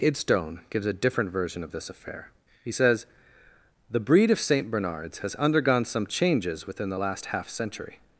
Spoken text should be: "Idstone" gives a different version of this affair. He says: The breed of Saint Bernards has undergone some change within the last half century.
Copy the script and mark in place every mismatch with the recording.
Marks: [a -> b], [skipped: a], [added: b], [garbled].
"Idstone" gives a different version of this affair. He says: The breed of Saint Bernards has undergone some [change -> changes] within the last half century.